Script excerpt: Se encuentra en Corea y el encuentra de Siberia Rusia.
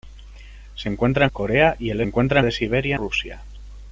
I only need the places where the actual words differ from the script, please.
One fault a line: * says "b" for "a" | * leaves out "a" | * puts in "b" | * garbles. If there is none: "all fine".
all fine